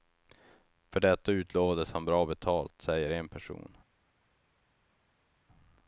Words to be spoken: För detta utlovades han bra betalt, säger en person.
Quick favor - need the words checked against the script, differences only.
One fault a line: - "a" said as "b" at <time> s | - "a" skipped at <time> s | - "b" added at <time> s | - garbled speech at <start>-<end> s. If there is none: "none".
none